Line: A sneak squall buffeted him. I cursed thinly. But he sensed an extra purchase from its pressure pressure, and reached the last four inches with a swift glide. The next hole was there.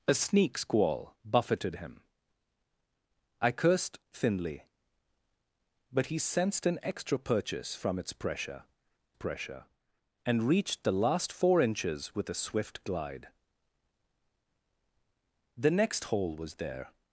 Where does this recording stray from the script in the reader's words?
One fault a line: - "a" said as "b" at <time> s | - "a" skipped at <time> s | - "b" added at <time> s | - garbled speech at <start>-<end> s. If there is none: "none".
none